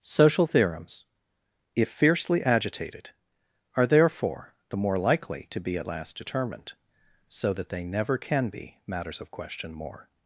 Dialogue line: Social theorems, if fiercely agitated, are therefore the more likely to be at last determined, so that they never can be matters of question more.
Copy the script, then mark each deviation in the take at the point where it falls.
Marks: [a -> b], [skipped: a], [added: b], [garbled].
Social theorems, if fiercely agitated, are therefore the more likely to be at last determined, so that they never can be matters of question more.